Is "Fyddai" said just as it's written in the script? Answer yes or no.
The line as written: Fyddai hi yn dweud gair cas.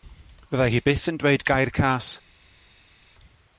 yes